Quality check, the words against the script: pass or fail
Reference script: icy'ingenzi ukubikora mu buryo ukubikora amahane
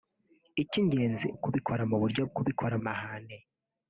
pass